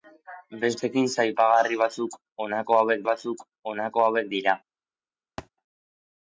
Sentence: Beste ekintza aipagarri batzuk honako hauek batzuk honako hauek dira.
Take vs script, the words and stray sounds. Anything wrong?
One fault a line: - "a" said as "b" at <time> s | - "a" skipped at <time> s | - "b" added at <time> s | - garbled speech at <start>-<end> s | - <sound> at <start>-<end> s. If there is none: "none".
- thud at 5.4-5.5 s